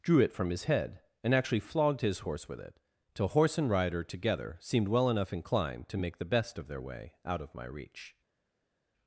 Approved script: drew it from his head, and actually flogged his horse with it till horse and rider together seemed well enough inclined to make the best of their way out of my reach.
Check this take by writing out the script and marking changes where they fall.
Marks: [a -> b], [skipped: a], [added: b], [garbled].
drew it from his head, and actually flogged his horse with it till horse and rider together seemed well enough inclined to make the best of their way out of my reach.